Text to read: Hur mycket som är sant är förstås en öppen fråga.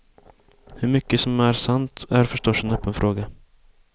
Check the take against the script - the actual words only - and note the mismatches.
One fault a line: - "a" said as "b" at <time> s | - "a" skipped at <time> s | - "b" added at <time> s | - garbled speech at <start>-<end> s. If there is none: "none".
none